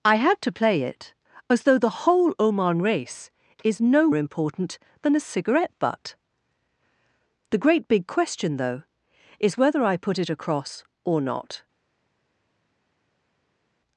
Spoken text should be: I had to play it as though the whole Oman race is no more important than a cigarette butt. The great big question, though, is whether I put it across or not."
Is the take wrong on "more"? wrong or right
wrong